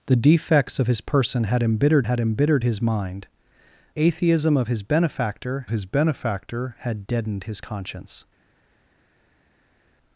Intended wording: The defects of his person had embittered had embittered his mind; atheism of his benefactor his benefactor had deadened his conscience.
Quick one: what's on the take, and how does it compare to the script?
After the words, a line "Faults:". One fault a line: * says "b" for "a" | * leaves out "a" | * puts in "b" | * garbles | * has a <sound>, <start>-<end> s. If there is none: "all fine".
The defects of his person had embittered had embittered his mind; atheism of his benefactor his benefactor had deadened his conscience.
Faults:
all fine